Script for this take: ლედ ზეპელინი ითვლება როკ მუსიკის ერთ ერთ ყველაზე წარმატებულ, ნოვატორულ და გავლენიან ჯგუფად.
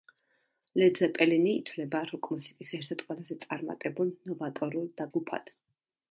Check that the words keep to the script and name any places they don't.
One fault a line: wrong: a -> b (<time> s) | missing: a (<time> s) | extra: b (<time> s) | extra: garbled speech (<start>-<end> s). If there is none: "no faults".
missing: გავლენიან (5.1 s)